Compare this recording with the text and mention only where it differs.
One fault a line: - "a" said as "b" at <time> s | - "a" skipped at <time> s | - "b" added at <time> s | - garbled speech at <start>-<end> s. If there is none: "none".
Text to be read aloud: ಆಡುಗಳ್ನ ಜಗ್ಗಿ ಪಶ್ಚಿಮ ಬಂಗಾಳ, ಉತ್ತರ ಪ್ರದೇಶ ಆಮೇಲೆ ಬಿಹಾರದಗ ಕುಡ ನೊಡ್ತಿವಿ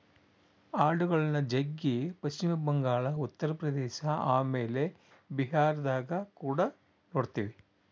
none